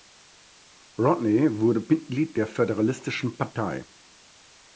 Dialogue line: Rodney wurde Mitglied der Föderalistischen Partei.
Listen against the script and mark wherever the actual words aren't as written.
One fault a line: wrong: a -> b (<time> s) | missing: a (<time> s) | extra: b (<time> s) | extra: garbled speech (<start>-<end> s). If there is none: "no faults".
no faults